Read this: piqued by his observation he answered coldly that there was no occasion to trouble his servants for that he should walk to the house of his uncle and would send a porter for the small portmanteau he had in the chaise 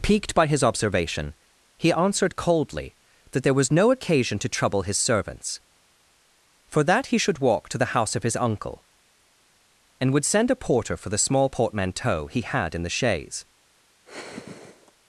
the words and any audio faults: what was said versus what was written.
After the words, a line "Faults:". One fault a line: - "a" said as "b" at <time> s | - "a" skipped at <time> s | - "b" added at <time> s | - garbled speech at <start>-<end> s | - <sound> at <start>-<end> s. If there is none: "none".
piqued by his observation he answered coldly that there was no occasion to trouble his servants for that he should walk to the house of his uncle and would send a porter for the small portmanteau he had in the chaise
Faults:
- sigh at 14.0-14.9 s